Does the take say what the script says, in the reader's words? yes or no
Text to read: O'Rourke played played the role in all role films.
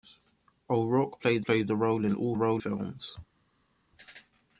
yes